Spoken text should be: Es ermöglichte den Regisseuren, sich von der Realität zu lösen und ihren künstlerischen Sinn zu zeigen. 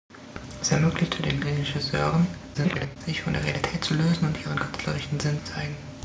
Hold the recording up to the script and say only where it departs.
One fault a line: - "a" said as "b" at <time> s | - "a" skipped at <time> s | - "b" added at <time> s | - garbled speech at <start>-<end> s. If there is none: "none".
- garbled speech at 2.5-3.0 s
- "zu" skipped at 5.4 s